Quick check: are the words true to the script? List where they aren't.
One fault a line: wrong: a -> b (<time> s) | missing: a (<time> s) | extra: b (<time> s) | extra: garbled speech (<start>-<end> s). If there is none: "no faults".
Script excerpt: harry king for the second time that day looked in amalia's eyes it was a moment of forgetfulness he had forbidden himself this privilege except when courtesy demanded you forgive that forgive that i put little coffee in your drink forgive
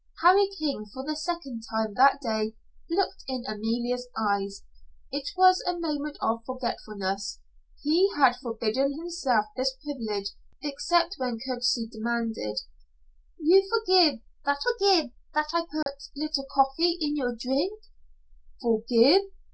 no faults